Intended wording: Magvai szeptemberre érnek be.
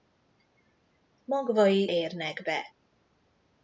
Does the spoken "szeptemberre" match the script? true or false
false